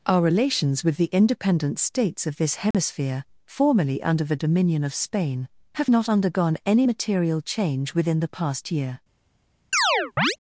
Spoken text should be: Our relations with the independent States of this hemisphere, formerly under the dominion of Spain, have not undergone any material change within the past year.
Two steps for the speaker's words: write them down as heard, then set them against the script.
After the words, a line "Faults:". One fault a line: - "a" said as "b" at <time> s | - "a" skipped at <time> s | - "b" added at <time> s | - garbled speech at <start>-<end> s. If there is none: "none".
Our relations with the independent States of this hemisphere, formerly under the dominion of Spain, have not undergone any material change within the past year.
Faults:
none